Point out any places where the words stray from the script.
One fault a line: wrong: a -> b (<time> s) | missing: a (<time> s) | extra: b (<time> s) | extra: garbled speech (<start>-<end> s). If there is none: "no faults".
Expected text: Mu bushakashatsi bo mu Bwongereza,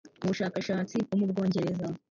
no faults